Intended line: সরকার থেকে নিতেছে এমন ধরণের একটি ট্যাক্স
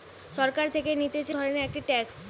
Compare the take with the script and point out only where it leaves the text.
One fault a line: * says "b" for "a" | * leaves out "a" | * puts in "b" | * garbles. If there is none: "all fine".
* leaves out "এমন"